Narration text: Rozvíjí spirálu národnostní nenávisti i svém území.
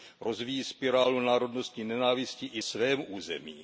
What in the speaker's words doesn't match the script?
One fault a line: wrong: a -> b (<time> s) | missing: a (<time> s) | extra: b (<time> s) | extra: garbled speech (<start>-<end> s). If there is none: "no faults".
no faults